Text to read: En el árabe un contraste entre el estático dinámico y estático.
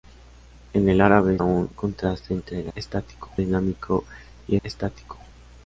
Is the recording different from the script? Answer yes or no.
no